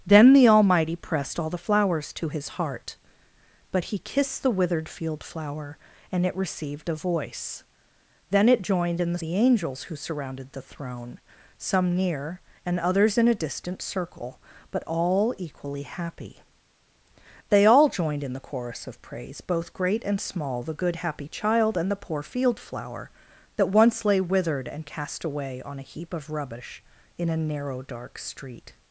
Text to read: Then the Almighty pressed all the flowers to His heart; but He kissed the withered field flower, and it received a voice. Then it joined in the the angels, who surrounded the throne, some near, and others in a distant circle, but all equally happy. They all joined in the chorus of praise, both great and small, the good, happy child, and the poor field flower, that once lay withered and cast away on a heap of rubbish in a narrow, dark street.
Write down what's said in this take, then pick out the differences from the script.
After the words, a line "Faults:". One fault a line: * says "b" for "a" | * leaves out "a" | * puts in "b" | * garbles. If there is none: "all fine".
Then the Almighty pressed all the flowers to His heart; but He kissed the withered field flower, and it received a voice. Then it joined in the the angels, who surrounded the throne, some near, and others in a distant circle, but all equally happy. They all joined in the chorus of praise, both great and small, the good, happy child, and the poor field flower, that once lay withered and cast away on a heap of rubbish in a narrow, dark street.
Faults:
all fine